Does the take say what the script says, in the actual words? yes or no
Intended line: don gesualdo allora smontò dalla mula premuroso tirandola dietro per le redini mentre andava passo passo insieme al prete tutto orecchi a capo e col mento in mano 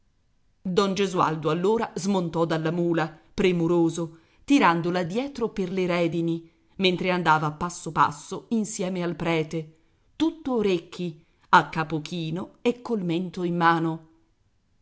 no